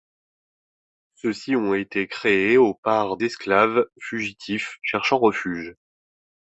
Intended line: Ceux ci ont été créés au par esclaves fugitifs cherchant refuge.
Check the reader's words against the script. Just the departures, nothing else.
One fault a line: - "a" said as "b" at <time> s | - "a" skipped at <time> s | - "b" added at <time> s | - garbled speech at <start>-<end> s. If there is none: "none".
none